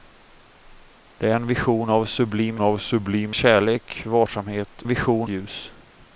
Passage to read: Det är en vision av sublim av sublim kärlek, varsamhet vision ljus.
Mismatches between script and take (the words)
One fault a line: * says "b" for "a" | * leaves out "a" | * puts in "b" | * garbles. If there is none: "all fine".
all fine